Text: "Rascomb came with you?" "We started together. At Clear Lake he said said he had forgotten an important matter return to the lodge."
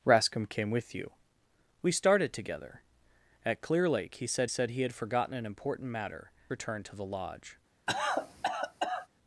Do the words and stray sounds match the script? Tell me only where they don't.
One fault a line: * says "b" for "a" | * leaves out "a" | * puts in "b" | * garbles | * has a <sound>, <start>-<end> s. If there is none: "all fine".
* has a cough, 7.9-9.1 s